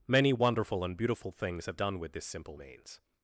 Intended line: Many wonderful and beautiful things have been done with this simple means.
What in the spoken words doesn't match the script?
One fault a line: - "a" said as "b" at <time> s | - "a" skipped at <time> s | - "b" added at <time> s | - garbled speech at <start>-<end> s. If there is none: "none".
- "been" skipped at 1.8 s